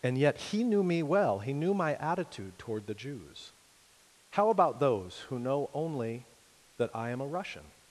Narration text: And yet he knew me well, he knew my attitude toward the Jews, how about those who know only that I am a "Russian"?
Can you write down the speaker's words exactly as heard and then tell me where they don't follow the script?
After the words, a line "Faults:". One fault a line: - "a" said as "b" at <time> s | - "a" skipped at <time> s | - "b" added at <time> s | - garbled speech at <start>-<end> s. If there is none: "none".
And yet he knew me well, he knew my attitude toward the Jews, how about those who know only that I am a "Russian"?
Faults:
none